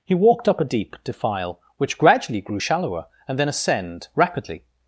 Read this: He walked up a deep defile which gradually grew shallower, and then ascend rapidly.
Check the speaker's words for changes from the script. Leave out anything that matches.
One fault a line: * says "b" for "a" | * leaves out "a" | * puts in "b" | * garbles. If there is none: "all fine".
all fine